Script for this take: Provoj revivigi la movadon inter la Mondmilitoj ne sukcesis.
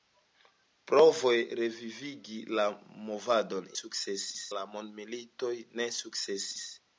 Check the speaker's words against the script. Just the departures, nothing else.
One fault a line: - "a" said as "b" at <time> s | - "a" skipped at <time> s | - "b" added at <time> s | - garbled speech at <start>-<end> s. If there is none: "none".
- "inter" said as "sukcesis" at 3.8 s